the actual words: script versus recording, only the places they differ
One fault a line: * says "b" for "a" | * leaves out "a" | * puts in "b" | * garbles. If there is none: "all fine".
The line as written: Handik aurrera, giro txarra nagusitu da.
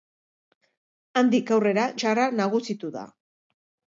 * leaves out "giro"